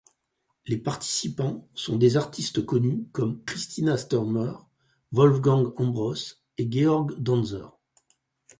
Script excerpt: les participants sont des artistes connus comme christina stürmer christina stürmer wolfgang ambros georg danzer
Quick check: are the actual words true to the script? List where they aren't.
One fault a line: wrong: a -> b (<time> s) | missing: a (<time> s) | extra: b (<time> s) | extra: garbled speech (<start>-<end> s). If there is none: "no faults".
missing: christina stürmer (4.5 s)
extra: et (6.6 s)